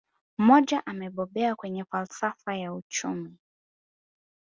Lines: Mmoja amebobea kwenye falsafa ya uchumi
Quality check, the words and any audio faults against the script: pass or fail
pass